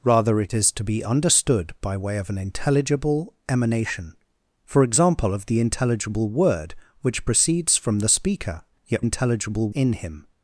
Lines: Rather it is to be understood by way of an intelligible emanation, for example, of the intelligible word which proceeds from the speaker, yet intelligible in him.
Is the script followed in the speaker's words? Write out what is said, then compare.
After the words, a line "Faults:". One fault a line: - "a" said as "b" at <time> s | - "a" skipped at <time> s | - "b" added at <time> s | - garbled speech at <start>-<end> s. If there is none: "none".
Rather it is to be understood by way of an intelligible emanation, for example, of the intelligible word which proceeds from the speaker, yet intelligible in him.
Faults:
none